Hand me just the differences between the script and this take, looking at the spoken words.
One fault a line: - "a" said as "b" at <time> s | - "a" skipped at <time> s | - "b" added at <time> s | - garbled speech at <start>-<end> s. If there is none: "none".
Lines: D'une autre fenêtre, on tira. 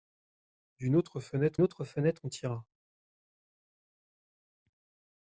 - "autre fenêtre" added at 1.6 s